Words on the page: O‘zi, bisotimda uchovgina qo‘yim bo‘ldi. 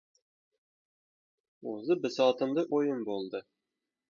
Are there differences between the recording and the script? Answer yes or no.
yes